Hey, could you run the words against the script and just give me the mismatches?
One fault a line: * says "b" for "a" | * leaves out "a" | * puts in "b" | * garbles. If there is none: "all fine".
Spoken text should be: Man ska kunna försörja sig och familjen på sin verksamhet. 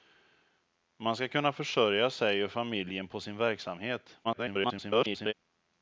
* garbles